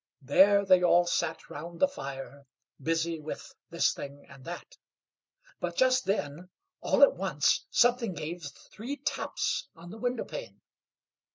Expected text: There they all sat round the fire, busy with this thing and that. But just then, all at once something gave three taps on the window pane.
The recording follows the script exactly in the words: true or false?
true